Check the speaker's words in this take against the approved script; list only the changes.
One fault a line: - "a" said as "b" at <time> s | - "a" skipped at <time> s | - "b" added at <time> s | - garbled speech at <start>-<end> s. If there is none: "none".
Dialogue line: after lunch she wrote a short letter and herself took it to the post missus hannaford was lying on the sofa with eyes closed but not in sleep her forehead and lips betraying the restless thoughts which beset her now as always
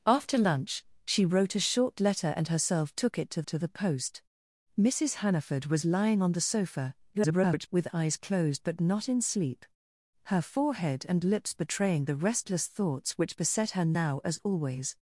- "to" added at 3.5 s
- garbled speech at 7.1-7.7 s